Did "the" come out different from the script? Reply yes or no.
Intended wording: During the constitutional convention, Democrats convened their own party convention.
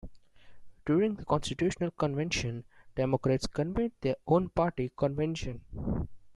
no